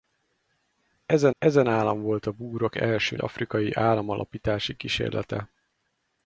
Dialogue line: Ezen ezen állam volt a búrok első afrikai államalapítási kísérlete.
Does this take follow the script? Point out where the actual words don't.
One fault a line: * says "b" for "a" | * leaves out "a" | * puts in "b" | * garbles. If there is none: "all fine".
all fine